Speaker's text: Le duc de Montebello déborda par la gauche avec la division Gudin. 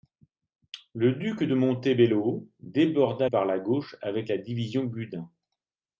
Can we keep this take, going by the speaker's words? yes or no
yes